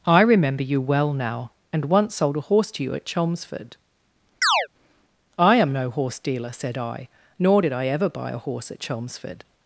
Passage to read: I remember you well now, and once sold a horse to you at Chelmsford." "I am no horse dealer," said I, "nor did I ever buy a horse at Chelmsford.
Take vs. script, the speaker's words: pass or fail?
pass